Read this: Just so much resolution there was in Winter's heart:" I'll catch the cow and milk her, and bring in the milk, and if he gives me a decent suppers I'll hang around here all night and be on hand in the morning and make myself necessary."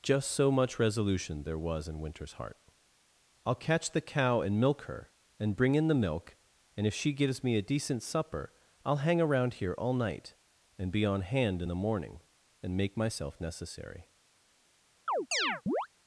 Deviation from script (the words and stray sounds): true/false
true